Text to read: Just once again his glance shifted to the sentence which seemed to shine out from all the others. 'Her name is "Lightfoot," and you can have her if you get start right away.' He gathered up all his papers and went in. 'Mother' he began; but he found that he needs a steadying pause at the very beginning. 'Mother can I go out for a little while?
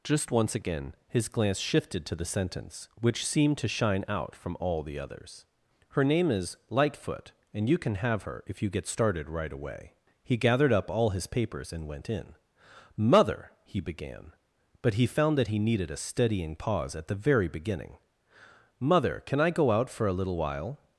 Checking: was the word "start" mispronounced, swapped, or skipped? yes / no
yes